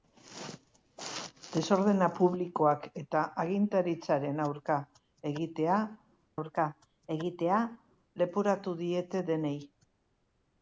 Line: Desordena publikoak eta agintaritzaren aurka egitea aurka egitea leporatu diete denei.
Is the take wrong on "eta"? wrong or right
right